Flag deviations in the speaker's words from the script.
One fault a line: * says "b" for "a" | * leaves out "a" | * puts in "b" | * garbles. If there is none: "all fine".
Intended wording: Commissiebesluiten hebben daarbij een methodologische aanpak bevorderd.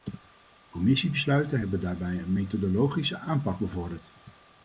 all fine